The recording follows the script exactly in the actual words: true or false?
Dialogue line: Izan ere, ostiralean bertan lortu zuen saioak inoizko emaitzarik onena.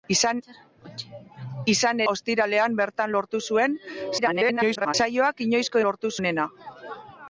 false